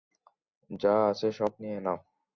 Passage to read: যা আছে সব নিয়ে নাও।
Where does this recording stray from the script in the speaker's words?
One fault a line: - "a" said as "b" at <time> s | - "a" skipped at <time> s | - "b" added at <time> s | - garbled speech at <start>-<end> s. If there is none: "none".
none